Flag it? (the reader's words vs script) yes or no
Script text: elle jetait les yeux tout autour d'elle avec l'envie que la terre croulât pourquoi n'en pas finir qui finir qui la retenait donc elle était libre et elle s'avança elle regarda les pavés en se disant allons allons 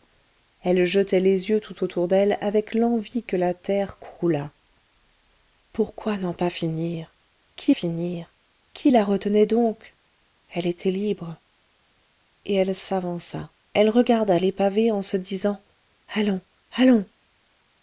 no